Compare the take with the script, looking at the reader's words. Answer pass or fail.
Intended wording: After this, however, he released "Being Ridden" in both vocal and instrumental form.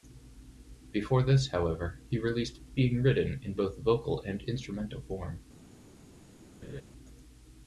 fail